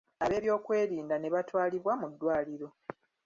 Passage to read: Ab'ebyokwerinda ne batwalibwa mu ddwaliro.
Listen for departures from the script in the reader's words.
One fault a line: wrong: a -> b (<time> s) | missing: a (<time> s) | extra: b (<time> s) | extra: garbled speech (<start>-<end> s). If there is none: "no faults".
no faults